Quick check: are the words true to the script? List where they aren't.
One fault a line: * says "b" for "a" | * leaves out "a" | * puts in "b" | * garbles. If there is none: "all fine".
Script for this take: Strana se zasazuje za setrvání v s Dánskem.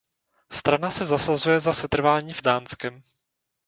all fine